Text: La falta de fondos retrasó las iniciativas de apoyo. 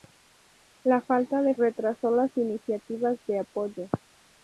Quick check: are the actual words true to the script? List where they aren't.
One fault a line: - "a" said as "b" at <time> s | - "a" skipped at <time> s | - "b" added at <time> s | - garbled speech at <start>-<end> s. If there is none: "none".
- "fondos" skipped at 1.5 s